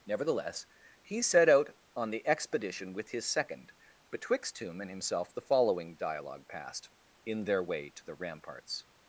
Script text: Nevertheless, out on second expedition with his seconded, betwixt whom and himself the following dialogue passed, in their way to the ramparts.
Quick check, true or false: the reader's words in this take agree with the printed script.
false